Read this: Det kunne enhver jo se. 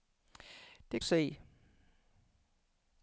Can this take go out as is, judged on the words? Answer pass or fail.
fail